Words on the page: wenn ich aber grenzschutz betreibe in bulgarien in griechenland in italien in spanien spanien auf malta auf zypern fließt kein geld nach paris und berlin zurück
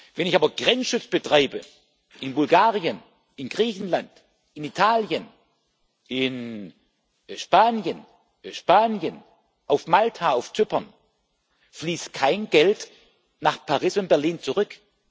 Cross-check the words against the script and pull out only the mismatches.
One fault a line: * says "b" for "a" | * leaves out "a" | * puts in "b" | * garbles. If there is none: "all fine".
all fine